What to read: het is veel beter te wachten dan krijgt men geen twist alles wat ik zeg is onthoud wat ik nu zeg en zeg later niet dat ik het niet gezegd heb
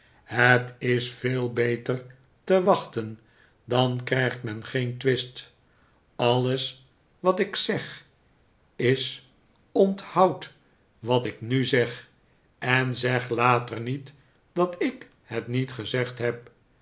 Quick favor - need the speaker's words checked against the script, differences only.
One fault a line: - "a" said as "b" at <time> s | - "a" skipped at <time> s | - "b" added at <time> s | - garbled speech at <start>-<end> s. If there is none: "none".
none